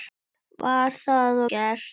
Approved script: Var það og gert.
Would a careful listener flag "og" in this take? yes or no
yes